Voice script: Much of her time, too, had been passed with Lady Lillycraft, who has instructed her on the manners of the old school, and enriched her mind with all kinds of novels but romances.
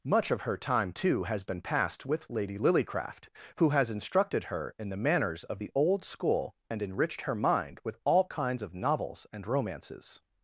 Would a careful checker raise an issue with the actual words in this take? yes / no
yes